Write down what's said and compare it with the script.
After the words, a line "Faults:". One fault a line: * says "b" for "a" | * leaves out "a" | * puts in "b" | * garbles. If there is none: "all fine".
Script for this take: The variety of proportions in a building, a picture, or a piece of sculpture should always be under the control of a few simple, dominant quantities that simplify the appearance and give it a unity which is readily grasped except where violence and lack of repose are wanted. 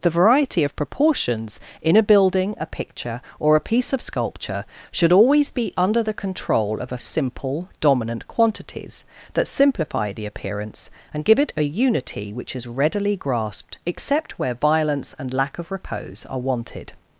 The variety of proportions in a building, a picture, or a piece of sculpture should always be under the control of a simple, dominant quantities that simplify the appearance and give it a unity which is readily grasped except where violence and lack of repose are wanted.
Faults:
* leaves out "few"